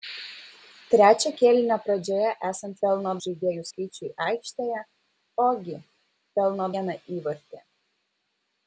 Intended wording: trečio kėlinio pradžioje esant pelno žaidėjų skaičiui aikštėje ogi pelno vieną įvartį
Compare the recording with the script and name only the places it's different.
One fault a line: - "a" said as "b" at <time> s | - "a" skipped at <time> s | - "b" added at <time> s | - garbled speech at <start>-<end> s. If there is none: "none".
none